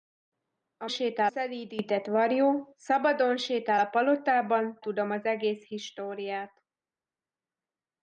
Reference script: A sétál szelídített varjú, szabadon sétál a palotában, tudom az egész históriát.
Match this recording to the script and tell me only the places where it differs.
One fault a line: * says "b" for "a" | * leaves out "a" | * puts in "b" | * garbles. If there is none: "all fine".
all fine